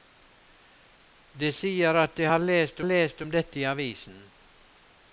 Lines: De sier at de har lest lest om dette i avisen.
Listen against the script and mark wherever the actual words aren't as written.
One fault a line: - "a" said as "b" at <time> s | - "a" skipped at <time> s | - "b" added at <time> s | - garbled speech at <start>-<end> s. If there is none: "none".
none